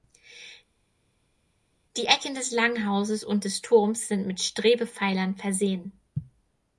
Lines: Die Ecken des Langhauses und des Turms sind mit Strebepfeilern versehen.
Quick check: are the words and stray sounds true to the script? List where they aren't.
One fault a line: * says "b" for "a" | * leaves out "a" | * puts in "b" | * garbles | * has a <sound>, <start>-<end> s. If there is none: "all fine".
all fine